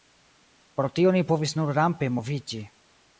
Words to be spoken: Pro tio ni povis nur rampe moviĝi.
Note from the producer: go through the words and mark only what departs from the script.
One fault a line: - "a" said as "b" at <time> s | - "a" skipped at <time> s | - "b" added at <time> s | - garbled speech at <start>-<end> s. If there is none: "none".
none